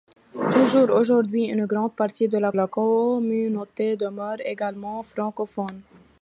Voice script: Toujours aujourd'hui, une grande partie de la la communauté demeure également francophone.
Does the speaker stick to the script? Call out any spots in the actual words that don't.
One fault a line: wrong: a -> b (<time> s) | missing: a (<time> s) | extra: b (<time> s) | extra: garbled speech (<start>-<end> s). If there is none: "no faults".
no faults